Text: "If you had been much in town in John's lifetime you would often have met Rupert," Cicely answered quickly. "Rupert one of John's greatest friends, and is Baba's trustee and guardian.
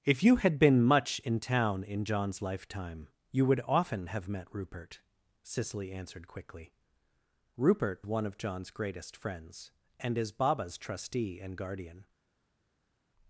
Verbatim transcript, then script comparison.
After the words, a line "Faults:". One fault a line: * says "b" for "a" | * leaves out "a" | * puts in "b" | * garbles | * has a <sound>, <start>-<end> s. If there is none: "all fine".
"If you had been much in town in John's lifetime you would often have met Rupert," Cicely answered quickly. "Rupert one of John's greatest friends, and is Baba's trustee and guardian.
Faults:
all fine